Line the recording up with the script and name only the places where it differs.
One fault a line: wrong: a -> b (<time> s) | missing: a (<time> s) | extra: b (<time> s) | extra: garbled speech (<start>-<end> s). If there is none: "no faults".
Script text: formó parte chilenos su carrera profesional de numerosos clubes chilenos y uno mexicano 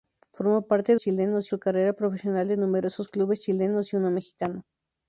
no faults